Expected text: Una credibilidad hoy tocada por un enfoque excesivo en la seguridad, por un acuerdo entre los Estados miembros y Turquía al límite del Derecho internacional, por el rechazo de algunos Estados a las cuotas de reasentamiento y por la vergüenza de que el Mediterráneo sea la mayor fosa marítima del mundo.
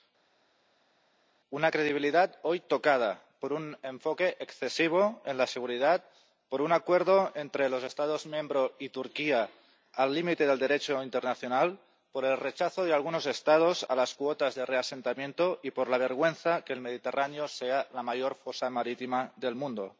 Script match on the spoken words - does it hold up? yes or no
yes